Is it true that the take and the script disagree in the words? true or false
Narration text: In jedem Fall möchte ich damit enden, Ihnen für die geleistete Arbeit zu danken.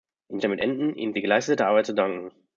true